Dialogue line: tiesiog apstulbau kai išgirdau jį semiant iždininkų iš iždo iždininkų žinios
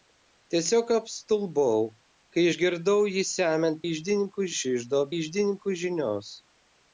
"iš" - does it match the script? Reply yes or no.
yes